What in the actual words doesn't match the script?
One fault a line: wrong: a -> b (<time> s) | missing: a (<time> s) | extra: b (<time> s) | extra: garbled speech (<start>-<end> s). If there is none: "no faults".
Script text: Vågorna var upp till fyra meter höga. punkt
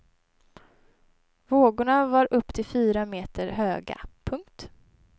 no faults